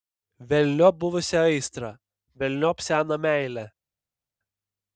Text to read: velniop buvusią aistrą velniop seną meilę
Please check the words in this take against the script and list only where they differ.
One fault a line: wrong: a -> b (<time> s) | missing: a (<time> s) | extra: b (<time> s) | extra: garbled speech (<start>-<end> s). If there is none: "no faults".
no faults